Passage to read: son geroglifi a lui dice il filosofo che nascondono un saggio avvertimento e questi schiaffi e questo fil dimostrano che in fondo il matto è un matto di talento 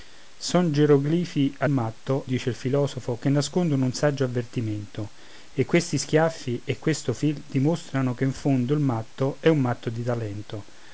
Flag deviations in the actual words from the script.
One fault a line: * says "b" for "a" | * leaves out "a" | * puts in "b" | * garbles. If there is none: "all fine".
* says "matto" for "lui"